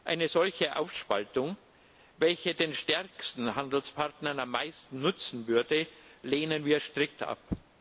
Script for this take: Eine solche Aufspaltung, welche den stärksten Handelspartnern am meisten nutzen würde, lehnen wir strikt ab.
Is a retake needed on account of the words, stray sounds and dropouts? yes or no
no